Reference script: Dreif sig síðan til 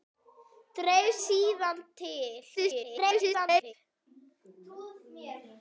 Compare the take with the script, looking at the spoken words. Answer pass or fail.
fail